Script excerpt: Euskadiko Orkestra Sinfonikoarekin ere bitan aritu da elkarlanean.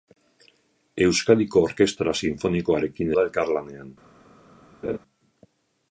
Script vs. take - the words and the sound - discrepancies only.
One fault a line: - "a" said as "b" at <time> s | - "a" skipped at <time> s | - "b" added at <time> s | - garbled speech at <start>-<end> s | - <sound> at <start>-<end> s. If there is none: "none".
- "ere bitan aritu" skipped at 3.1 s
- laugh at 4.8-5.0 s